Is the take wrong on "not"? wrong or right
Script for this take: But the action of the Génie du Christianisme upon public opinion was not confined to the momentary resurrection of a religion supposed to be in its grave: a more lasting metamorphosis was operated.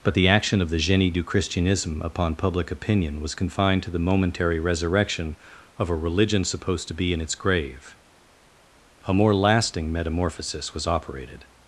wrong